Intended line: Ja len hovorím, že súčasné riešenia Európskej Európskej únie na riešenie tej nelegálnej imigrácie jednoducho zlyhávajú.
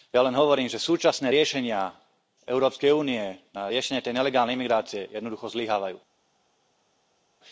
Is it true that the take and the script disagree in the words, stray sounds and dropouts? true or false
true